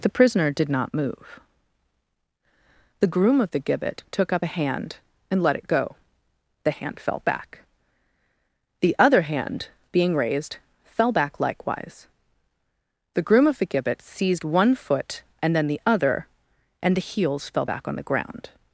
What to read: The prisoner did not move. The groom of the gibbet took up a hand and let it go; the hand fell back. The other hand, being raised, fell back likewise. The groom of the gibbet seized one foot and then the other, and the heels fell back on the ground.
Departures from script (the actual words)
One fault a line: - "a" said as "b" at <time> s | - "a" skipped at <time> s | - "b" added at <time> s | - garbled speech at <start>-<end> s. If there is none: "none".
none